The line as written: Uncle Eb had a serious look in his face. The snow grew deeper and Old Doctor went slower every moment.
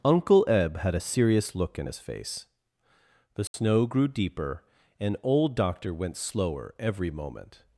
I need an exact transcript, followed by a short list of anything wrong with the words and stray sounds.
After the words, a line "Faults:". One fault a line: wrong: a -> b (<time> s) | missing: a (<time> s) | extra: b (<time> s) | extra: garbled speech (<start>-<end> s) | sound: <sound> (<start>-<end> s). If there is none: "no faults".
Uncle Eb had a serious look in his face. The snow grew deeper and Old Doctor went slower every moment.
Faults:
sound: dropout (3.5-3.5 s)